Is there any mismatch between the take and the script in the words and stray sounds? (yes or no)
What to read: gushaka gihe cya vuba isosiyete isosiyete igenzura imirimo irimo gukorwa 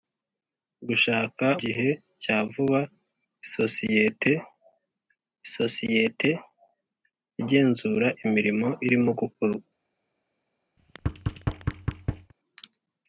yes